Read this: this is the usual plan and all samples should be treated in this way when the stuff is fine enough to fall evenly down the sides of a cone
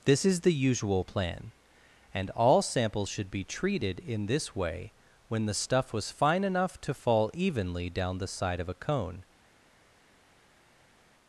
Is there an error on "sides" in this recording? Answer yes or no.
yes